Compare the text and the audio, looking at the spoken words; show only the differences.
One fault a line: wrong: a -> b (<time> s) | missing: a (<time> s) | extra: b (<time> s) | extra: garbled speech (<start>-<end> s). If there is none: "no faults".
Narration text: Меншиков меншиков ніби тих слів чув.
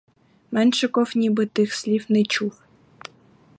missing: меншиков (1.1 s)
extra: не (2.1 s)